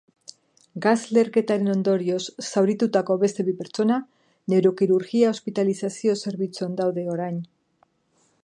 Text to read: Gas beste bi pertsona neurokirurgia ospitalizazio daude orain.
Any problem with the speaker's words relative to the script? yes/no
yes